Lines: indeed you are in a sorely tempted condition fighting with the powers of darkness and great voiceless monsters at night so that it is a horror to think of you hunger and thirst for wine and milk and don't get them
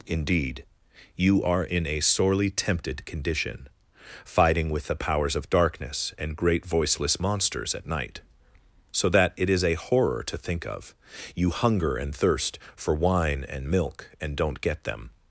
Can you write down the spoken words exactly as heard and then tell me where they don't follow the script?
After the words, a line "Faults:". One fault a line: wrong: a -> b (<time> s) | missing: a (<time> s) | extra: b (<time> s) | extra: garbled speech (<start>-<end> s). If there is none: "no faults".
indeed you are in a sorely tempted condition fighting with the powers of darkness and great voiceless monsters at night so that it is a horror to think of you hunger and thirst for wine and milk and don't get them
Faults:
no faults